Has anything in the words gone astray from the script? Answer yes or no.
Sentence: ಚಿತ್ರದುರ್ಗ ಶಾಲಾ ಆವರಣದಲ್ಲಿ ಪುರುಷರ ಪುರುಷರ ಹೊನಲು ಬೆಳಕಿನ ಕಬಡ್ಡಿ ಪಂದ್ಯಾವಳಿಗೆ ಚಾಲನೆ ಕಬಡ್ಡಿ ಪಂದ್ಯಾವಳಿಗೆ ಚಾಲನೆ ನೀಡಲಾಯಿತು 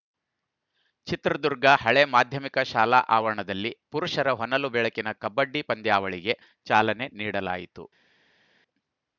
yes